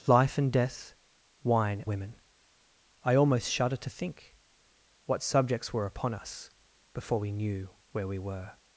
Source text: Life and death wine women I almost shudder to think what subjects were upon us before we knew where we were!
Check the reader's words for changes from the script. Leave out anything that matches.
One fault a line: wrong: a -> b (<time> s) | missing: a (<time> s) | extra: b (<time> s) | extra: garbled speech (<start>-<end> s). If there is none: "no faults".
no faults